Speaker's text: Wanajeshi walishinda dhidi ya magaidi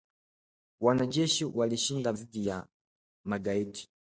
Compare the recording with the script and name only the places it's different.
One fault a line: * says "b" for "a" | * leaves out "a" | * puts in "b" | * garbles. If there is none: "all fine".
all fine